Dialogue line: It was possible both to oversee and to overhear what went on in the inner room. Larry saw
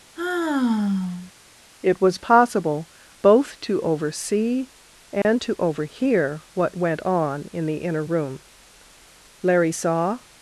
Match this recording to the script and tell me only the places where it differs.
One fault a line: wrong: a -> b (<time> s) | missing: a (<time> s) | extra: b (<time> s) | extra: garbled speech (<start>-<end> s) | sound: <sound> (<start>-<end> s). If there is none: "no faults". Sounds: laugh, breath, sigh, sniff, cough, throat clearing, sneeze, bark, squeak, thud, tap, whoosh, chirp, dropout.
sound: sigh (0.2-1.3 s)
sound: dropout (5.2-5.2 s)